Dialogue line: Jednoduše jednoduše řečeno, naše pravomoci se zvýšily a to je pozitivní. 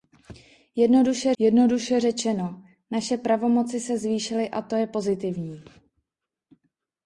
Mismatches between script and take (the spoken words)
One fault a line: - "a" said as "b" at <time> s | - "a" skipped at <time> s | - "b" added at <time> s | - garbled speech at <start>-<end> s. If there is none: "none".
none